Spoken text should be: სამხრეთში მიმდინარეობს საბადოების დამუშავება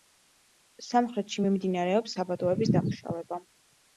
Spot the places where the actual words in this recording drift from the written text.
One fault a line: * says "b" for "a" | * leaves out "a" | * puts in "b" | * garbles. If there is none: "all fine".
all fine